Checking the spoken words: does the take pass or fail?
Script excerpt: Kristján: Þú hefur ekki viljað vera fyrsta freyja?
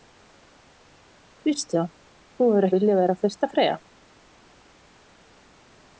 fail